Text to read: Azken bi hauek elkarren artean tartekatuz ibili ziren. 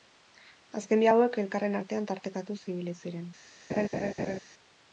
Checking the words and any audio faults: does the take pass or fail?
fail